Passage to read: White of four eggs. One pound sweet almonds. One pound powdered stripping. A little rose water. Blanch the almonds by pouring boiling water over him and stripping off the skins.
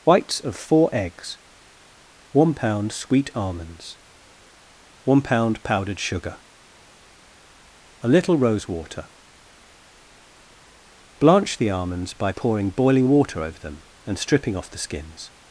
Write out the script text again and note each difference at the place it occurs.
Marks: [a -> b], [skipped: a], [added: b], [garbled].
[White -> Whites] of four eggs. One pound sweet almonds. One pound powdered [stripping. -> sugar] A little rose water. Blanch the almonds by pouring boiling water over [him -> them] and stripping off the skins.